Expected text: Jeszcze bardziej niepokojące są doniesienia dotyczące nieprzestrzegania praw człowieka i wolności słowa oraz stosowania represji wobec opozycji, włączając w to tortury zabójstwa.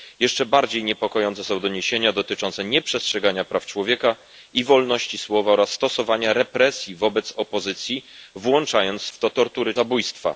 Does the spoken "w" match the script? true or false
true